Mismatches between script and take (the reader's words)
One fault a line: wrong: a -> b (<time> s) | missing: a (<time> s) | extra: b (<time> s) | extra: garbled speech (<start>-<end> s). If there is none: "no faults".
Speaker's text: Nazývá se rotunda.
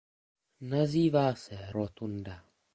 no faults